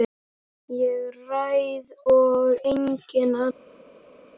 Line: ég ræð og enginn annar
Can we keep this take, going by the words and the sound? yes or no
yes